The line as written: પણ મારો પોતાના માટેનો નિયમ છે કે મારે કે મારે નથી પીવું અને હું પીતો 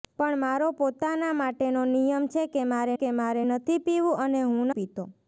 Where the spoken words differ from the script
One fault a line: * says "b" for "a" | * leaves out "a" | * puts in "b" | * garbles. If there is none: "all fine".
all fine